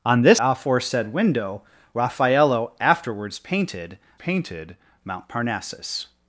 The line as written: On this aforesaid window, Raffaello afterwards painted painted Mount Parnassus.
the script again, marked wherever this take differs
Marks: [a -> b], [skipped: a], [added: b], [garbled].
On this aforesaid window, Raffaello afterwards painted painted Mount Parnassus.